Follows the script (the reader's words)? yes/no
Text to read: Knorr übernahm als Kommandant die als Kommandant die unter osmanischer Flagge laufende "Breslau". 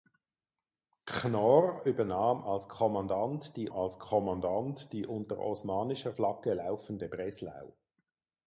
yes